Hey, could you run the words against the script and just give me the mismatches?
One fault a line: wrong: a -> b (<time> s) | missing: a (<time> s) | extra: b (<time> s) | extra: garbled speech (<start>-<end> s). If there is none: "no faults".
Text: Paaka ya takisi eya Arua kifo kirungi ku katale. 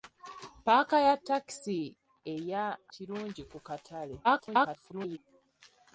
missing: Arua kifo (2.6 s)
extra: garbled speech (4.2-5.2 s)